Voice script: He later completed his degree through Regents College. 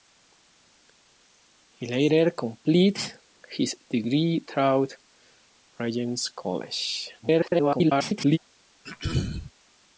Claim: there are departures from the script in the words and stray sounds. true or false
true